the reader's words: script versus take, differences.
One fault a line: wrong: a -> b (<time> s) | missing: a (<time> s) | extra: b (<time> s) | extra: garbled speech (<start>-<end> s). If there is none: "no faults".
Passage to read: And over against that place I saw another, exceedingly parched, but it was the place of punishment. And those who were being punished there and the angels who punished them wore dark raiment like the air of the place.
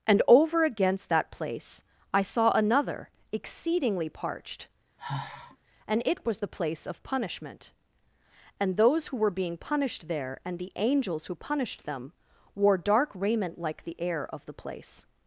wrong: but -> and (5.9 s)